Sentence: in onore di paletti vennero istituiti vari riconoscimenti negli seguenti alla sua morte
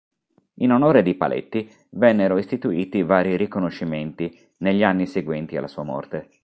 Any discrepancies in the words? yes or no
yes